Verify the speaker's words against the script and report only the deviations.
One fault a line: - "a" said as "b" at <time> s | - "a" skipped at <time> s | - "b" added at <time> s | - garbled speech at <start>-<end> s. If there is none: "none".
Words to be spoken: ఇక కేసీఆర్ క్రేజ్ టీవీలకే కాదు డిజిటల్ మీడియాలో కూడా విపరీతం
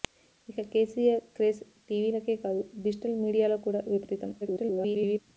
- garbled speech at 4.4-5.2 s